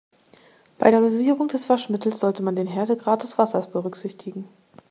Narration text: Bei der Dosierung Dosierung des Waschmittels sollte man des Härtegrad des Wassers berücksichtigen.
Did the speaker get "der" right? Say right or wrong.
right